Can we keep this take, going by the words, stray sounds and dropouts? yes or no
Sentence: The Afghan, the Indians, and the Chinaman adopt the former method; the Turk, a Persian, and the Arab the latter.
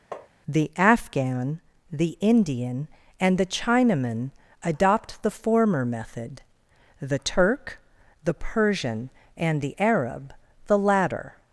no